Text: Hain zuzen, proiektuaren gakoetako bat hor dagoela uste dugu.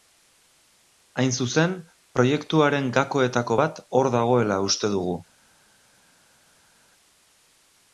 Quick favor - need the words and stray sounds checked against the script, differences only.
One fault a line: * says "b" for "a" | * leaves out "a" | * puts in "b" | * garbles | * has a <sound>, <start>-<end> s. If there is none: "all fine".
all fine